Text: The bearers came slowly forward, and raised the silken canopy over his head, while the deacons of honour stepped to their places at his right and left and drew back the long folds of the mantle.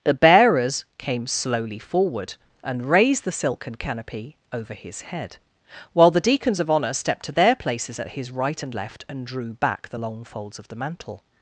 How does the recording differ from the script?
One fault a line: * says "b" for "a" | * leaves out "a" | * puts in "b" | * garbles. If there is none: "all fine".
all fine